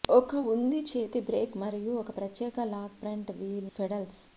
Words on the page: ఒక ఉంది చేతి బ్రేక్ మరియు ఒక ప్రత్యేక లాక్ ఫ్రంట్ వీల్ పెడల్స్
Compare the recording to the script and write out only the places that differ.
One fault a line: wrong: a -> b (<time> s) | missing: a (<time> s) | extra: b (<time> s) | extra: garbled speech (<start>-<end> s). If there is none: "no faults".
no faults